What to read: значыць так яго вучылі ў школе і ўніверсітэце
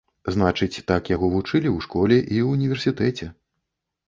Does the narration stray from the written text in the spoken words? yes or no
no